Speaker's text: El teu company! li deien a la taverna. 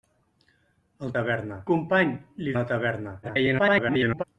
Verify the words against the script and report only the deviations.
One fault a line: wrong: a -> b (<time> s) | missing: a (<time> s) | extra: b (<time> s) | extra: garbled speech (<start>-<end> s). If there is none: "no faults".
wrong: teu -> taverna (1.2 s)
missing: deien (2.6 s)
extra: garbled speech (3.2-4.2 s)